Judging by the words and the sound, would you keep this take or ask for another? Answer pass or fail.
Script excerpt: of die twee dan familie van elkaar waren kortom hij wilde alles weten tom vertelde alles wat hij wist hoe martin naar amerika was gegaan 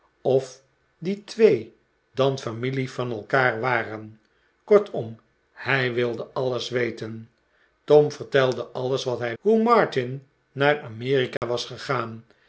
fail